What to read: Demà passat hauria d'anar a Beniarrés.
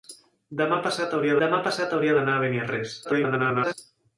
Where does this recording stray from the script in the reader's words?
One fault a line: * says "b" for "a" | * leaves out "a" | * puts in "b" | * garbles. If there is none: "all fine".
* puts in "demà passat hauria"
* garbles